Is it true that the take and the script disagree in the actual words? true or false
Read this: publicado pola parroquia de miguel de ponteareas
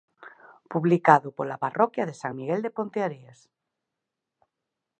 true